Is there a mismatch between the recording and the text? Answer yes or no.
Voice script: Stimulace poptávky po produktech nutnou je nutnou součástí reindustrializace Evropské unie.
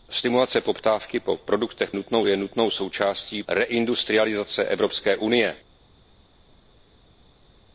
no